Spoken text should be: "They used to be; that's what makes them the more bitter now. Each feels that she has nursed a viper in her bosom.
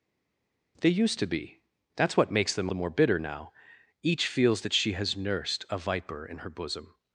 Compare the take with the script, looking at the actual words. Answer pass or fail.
pass